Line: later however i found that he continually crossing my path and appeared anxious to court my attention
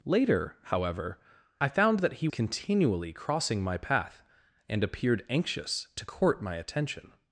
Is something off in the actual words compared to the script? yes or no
no